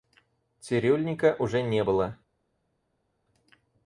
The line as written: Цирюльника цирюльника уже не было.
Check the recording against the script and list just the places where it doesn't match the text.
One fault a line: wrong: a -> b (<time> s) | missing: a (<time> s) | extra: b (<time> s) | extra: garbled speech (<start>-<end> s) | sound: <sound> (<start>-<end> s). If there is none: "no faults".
missing: цирюльника (1.4 s)